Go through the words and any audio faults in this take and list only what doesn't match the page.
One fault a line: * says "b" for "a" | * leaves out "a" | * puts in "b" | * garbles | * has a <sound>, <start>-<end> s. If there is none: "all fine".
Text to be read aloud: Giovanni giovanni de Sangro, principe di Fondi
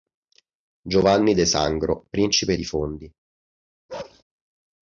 * leaves out "giovanni"
* has a bark, 3.9-4.2 s